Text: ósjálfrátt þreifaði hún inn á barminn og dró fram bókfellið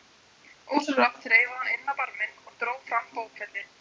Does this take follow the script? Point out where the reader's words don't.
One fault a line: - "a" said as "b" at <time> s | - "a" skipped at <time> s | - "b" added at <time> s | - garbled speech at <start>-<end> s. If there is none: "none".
none